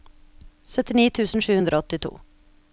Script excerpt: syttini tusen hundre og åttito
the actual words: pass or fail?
fail